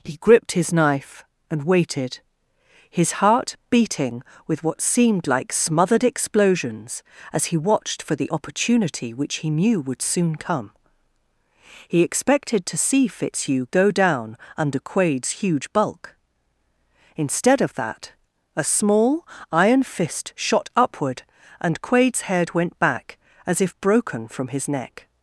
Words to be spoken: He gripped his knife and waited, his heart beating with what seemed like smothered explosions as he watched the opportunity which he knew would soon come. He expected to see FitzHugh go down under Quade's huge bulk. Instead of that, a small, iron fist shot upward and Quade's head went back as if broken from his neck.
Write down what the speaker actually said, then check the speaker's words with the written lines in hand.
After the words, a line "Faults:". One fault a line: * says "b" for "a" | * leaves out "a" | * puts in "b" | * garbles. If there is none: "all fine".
He gripped his knife and waited, his heart beating with what seemed like smothered explosions as he watched for the opportunity which he knew would soon come. He expected to see FitzHugh go down under Quade's huge bulk. Instead of that, a small, iron fist shot upward and Quade's head went back as if broken from his neck.
Faults:
* puts in "for"